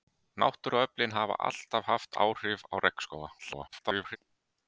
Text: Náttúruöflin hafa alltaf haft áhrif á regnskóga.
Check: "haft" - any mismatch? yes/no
no